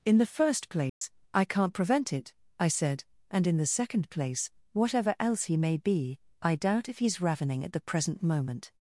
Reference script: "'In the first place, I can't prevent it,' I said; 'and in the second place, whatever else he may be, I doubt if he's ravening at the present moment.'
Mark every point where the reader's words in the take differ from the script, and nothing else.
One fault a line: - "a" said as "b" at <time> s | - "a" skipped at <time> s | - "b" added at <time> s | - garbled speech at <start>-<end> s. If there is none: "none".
none